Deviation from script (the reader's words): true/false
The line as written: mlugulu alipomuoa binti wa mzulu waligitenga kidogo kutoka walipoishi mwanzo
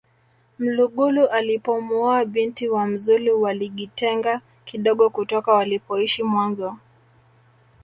false